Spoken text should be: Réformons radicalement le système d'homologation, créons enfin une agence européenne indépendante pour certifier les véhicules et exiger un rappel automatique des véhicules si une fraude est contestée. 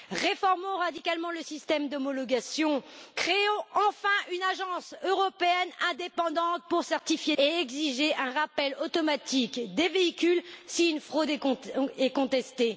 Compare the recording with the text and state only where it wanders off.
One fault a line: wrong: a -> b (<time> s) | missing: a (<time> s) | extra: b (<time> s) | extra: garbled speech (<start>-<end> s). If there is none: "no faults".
missing: les véhicules (7.3 s)